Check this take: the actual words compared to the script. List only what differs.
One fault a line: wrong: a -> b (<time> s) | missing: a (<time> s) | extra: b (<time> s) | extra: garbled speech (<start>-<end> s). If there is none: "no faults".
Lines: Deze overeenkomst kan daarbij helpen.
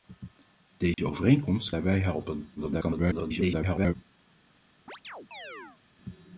missing: kan (1.7 s)
extra: garbled speech (2.6-4.0 s)